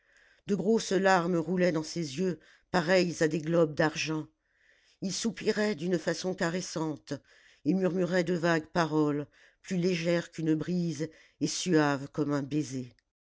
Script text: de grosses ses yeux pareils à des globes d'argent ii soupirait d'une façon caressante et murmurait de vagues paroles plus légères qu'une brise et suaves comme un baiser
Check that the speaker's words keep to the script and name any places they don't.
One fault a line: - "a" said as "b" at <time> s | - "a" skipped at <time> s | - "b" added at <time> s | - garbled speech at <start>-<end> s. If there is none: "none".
- "larmes roulaient dans" added at 0.9 s